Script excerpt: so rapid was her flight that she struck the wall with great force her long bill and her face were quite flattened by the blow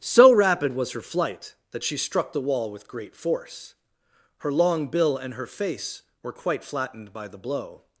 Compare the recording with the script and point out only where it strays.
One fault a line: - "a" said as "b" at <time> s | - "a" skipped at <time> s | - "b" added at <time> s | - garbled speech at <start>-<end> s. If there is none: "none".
none